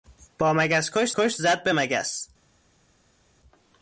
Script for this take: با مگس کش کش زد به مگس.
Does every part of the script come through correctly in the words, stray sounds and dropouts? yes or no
yes